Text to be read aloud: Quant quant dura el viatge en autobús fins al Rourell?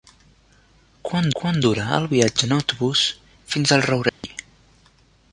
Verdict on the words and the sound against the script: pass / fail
fail